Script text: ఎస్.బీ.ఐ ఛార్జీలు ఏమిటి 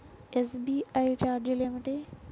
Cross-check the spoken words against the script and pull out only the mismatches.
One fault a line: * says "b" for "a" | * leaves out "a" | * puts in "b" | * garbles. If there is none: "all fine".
all fine